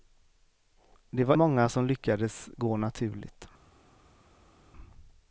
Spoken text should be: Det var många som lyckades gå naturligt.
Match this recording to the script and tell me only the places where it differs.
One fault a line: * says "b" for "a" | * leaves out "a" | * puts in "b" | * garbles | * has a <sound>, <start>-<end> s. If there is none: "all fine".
all fine